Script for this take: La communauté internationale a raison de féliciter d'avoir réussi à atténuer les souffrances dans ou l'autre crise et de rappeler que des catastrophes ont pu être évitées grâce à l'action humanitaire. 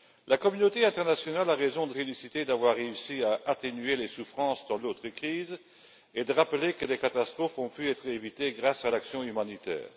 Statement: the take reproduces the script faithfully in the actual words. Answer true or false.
true